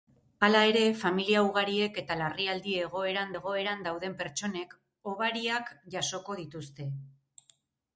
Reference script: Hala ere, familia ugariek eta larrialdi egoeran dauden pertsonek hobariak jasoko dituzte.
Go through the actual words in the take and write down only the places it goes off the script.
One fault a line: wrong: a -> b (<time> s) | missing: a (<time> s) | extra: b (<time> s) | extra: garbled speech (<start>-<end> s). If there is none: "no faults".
extra: egoeran (3.4 s)